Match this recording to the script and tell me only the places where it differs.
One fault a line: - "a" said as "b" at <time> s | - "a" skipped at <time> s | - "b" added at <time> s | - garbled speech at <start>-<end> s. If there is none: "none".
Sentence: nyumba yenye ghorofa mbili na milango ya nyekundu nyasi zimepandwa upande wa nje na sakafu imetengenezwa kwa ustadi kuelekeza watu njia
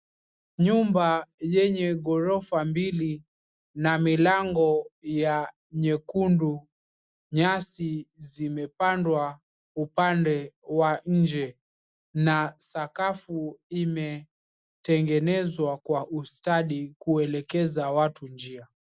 none